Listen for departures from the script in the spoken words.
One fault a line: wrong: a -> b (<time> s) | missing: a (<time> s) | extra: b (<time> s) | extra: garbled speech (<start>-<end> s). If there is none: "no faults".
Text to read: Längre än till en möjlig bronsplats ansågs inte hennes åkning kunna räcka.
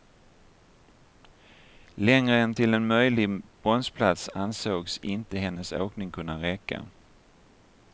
no faults